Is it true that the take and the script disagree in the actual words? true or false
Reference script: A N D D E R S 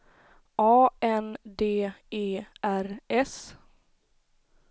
true